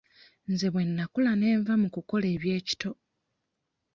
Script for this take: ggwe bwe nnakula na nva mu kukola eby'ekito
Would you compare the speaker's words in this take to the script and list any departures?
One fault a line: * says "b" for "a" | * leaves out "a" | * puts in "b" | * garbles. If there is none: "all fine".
* says "nze" for "ggwe"
* says "ne" for "na"